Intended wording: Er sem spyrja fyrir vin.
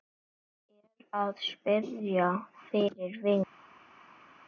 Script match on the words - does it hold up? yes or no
no